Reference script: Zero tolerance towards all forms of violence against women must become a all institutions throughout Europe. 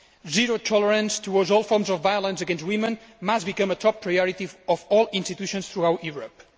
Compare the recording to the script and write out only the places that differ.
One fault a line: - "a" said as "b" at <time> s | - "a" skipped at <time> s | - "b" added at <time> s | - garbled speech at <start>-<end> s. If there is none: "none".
- "top priority of" added at 3.8 s